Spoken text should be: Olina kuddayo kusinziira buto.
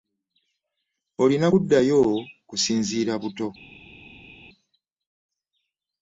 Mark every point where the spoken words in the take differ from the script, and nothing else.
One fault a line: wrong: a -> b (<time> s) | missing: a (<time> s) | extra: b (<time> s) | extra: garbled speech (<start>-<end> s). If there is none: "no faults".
no faults